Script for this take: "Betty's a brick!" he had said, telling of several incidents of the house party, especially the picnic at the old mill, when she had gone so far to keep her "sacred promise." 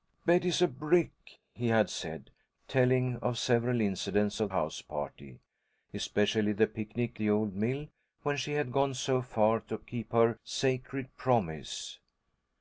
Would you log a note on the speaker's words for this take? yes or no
yes